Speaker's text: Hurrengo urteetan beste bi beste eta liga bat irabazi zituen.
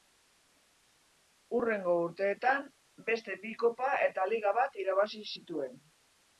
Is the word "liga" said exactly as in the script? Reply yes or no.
yes